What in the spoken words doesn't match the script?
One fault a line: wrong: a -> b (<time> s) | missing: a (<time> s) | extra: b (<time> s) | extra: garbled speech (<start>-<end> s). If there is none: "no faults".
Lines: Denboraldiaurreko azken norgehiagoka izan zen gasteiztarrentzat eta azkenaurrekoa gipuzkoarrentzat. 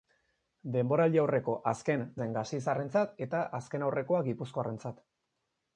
missing: norgehiagoka izan (2.0 s)